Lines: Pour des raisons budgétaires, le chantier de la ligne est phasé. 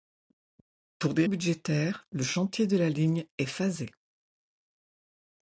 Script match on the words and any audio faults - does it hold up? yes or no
no